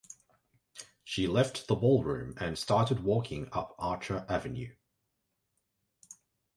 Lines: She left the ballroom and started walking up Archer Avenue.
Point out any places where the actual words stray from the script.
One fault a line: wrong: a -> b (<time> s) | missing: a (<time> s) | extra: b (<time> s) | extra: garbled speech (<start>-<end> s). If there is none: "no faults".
no faults